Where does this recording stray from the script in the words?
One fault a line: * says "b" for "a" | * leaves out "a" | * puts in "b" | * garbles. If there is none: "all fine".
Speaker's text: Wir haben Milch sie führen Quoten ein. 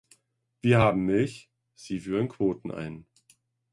all fine